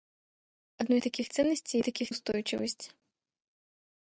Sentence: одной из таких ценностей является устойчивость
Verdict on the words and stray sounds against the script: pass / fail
fail